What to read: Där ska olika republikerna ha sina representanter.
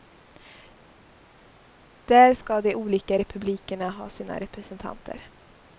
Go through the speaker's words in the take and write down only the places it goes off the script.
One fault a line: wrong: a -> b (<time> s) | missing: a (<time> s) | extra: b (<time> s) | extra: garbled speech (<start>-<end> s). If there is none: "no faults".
extra: de (2.6 s)